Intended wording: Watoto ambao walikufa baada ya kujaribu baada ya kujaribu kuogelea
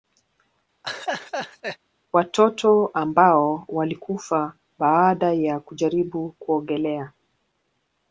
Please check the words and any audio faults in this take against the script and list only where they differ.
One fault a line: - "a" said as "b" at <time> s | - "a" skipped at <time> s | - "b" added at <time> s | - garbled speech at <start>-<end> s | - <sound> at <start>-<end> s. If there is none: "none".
- laugh at 0.8-1.8 s
- "baada ya kujaribu" skipped at 6.3 s